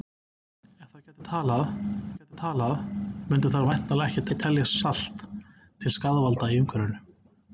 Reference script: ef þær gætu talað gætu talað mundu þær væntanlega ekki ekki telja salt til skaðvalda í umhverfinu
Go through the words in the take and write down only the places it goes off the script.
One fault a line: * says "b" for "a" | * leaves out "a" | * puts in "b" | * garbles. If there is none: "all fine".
all fine